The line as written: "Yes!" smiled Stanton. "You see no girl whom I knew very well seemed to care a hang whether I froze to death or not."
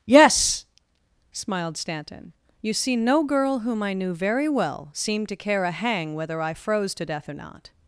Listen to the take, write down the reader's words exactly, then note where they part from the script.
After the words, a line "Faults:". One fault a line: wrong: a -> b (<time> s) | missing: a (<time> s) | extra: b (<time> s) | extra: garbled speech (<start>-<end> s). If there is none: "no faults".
"Yes!" smiled Stanton. "You see no girl whom I knew very well seemed to care a hang whether I froze to death or not."
Faults:
no faults